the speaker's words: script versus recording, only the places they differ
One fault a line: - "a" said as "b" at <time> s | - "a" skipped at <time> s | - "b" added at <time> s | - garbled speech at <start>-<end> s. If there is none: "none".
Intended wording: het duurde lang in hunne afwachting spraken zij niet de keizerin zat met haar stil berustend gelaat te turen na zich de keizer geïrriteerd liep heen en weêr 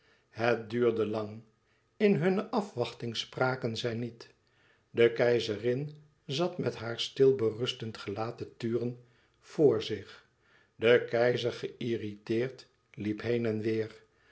- "na" said as "voor" at 9.4 s